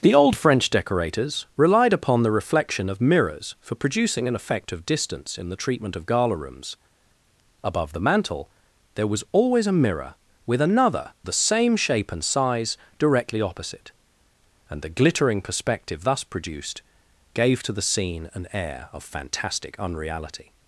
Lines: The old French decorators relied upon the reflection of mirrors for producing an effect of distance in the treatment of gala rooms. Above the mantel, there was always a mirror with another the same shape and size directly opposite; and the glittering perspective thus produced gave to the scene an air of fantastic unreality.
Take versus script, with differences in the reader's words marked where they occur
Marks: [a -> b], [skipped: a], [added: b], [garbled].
The old French decorators relied upon the reflection of mirrors for producing an effect of distance in the treatment of gala rooms. Above the mantel, there was always a mirror with another the same shape and size directly opposite; and the glittering perspective thus produced gave to the scene an air of fantastic unreality.